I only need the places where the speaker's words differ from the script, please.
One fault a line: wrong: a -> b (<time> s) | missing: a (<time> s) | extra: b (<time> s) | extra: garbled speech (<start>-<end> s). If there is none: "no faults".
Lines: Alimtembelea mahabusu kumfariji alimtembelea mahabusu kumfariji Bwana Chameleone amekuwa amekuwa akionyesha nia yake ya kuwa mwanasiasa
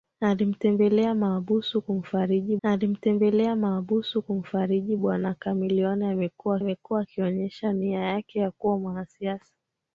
no faults